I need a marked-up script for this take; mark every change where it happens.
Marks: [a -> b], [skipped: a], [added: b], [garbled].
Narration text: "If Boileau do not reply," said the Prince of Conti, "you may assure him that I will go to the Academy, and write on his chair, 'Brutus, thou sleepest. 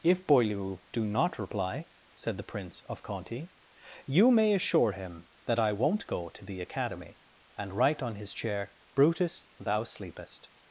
"If Boileau do not reply," said the Prince of Conti, "you may assure him that I [will -> won't] go to the Academy, and write on his chair, 'Brutus, thou sleepest.